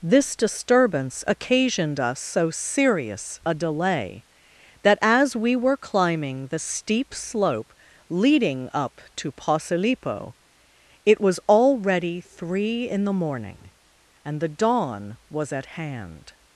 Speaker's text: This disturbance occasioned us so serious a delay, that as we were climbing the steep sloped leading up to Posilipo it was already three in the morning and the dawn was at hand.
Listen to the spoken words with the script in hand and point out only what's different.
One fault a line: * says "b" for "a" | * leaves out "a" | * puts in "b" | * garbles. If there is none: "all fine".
* says "slope" for "sloped"